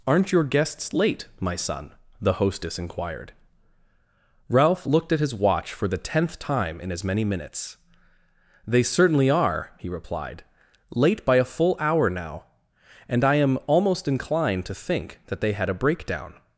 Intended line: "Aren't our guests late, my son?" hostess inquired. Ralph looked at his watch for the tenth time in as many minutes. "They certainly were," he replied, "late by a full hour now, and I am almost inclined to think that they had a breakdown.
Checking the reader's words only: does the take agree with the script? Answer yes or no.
no